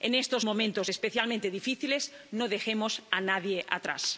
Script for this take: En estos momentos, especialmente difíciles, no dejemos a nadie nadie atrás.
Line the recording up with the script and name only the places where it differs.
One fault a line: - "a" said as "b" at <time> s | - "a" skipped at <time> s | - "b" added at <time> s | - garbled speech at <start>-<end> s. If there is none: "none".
- "nadie" skipped at 3.6 s